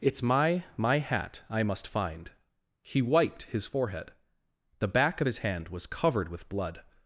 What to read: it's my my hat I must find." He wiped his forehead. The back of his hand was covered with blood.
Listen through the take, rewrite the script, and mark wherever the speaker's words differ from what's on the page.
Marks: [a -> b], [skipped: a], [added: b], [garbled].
it's my my hat I must find." He wiped his forehead. The back of his hand was covered with blood.